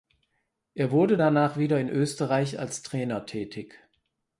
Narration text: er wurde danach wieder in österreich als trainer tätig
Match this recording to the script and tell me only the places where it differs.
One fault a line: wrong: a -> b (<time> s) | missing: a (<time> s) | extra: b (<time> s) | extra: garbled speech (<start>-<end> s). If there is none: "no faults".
no faults